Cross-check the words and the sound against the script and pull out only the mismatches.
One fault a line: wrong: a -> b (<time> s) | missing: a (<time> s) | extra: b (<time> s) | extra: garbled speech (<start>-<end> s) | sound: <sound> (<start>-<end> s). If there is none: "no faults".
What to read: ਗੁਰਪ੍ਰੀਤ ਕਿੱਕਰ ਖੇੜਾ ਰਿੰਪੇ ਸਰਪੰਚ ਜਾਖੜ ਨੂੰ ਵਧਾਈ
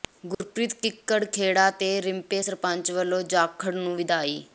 sound: dropout (0.3-0.4 s)
extra: ਤੇ (1.7 s)
extra: ਵੱਲੋਂ (2.9 s)